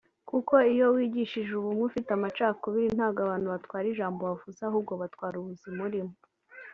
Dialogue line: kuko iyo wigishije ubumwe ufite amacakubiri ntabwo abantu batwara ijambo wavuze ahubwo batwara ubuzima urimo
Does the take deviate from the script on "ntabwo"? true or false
false